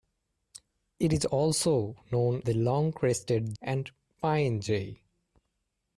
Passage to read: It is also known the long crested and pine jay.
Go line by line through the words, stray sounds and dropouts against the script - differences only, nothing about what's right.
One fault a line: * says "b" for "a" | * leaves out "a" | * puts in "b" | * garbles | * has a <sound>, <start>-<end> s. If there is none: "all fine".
all fine